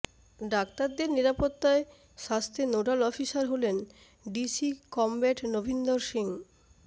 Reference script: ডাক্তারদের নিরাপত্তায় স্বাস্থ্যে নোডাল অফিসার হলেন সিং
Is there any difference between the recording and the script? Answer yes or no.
yes